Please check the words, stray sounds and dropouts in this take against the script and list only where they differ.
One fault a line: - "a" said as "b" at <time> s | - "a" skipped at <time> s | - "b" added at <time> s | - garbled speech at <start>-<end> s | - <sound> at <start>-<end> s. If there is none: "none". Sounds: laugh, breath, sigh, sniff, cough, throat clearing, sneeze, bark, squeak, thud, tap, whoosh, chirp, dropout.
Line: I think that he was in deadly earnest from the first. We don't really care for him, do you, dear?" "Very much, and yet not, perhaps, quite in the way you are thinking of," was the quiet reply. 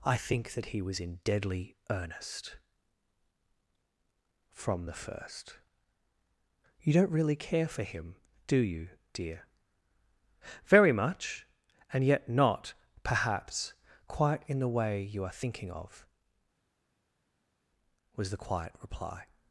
- "We" said as "You" at 6.8 s